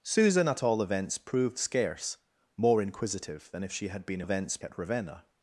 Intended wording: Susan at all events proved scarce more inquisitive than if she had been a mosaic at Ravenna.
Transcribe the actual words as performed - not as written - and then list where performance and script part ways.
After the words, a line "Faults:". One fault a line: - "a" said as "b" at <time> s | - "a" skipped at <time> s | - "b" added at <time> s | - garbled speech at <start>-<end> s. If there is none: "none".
Susan at all events proved scarce more inquisitive than if she had been a events at Ravenna.
Faults:
- "mosaic" said as "events" at 4.2 s